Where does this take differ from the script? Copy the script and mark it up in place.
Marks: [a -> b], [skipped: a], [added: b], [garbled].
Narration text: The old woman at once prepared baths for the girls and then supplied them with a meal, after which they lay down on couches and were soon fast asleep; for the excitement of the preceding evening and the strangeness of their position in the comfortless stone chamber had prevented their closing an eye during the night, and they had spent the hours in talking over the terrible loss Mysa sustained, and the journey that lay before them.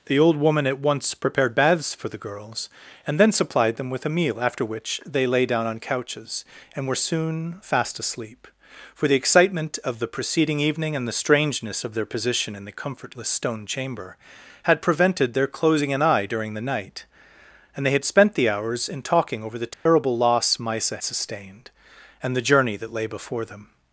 The old woman at once prepared baths for the girls and then supplied them with a meal, after which they lay down on couches and were soon fast asleep; for the excitement of the preceding evening and the strangeness of their position in the comfortless stone chamber had prevented their closing an eye during the night, and they had spent the hours in talking over the terrible loss Mysa sustained, and the journey that lay before them.